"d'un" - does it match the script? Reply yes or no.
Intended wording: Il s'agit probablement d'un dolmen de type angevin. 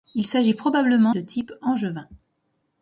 no